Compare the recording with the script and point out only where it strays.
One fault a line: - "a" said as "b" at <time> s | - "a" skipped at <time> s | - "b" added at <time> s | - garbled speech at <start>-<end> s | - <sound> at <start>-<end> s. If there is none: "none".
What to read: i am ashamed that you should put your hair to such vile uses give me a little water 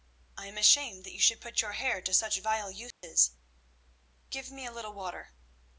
- dropout at 2.9-3.0 s